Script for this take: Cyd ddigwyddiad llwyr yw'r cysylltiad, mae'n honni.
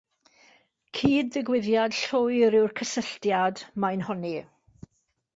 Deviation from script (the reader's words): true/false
false